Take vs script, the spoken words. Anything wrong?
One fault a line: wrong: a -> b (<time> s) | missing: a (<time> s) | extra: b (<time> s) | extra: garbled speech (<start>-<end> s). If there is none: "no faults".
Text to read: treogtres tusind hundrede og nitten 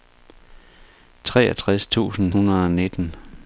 no faults